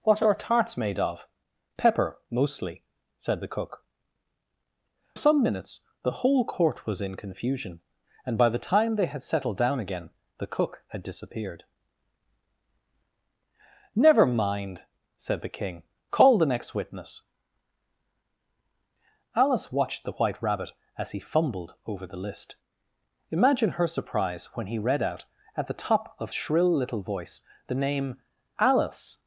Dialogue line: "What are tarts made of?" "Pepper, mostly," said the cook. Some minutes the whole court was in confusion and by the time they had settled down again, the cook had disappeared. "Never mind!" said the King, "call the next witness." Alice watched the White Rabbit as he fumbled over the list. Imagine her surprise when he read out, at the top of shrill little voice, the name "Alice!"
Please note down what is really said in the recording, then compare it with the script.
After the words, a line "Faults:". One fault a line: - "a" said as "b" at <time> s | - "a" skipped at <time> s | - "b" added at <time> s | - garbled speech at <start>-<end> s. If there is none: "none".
"What are tarts made of?" "Pepper, mostly," said the cook. Some minutes the whole court was in confusion and by the time they had settled down again, the cook had disappeared. "Never mind!" said the King, "call the next witness." Alice watched the White Rabbit as he fumbled over the list. Imagine her surprise when he read out, at the top of shrill little voice, the name "Alice!"
Faults:
none